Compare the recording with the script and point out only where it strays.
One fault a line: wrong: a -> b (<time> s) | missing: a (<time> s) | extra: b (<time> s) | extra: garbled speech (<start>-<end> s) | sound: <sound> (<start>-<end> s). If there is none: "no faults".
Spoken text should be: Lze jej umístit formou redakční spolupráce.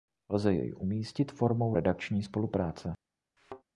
sound: thud (3.4-3.6 s)